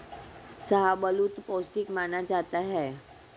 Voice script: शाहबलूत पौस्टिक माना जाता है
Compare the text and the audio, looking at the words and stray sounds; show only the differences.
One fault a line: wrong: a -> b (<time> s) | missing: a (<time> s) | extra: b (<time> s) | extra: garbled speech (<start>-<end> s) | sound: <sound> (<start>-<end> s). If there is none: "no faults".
no faults